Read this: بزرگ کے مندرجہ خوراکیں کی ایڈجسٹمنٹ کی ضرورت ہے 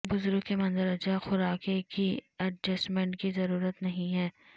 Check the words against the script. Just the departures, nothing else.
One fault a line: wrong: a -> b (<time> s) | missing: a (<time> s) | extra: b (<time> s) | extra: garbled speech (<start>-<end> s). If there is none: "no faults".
extra: نہیں (3.8 s)